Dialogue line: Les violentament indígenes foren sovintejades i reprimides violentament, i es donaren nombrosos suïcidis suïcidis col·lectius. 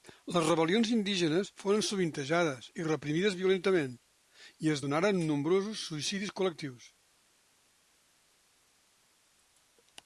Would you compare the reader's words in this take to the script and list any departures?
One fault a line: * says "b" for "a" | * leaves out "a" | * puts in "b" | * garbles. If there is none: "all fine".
* says "rebel·lions" for "violentament"
* leaves out "suïcidis"